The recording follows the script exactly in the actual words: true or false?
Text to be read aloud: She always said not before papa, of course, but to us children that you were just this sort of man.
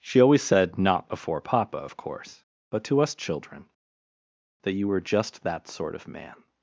false